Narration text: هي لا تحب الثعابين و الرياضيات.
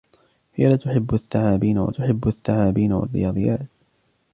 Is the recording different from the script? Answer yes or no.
yes